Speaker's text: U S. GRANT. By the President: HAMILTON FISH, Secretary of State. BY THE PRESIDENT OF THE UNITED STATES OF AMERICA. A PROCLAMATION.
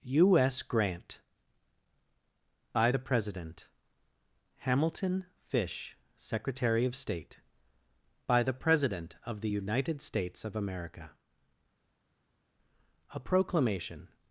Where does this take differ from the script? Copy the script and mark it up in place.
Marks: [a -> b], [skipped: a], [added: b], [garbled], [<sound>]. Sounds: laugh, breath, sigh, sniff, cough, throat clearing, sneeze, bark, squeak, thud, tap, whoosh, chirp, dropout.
U S. GRANT. By the President: HAMILTON FISH, Secretary of State. BY THE PRESIDENT OF THE UNITED STATES OF AMERICA. A PROCLAMATION.